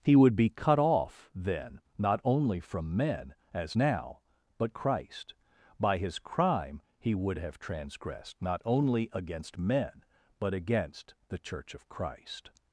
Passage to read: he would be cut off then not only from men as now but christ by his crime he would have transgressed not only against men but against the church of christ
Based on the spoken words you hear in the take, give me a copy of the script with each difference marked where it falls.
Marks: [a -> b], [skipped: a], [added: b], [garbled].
he would be cut off then not only from men as now but christ by his crime he would have transgressed not only against men but against the church of christ